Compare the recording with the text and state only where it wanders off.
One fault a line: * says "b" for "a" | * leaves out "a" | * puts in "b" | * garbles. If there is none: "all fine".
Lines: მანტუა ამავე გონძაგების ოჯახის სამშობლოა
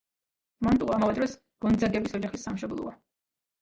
* puts in "დროს"